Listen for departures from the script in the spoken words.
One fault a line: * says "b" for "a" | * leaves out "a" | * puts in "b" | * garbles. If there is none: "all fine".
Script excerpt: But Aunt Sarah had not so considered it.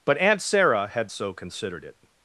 * leaves out "not"